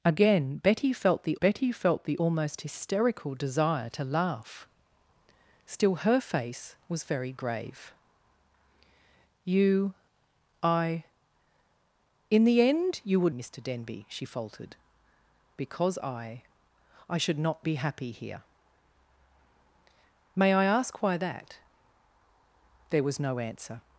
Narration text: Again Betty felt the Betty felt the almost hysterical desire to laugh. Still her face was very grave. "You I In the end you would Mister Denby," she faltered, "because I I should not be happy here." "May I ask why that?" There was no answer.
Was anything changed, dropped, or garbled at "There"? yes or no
no